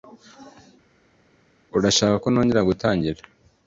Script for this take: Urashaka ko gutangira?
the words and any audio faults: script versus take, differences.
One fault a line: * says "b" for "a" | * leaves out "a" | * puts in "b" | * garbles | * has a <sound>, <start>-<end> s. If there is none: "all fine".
* puts in "nongera"